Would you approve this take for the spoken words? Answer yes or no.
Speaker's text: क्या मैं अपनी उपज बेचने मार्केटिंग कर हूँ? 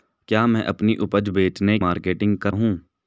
yes